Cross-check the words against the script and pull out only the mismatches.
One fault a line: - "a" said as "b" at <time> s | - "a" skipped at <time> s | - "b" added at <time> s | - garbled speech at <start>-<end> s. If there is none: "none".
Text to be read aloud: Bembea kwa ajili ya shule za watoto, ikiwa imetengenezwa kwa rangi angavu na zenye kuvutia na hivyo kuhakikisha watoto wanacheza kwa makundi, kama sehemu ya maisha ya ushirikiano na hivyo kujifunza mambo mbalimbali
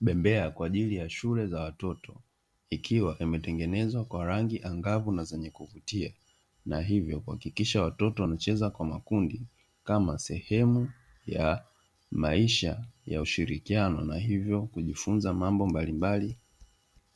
none